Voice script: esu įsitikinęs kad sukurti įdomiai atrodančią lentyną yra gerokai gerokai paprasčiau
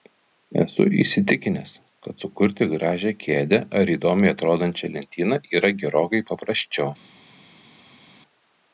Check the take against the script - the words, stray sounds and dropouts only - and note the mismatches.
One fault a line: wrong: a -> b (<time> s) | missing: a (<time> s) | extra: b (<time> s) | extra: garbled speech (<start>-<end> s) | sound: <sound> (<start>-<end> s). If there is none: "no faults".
extra: gražią kėdę ar (2.7 s)
missing: gerokai (6.2 s)